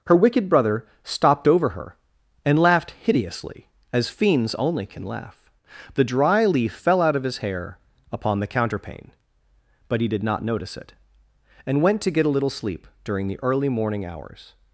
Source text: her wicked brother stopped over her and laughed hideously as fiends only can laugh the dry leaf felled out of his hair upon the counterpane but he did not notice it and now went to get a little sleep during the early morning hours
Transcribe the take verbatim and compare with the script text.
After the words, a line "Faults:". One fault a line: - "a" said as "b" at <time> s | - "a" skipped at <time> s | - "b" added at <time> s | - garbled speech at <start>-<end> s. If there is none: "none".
her wicked brother stopped over her and laughed hideously as fiends only can laugh the dry leaf fell out of his hair upon the counterpane but he did not notice it and went to get a little sleep during the early morning hours
Faults:
- "felled" said as "fell" at 6.7 s
- "now" skipped at 11.8 s